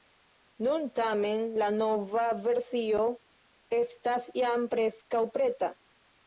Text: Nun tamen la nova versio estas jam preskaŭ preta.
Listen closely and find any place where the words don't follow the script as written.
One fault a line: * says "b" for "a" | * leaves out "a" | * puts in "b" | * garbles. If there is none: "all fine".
all fine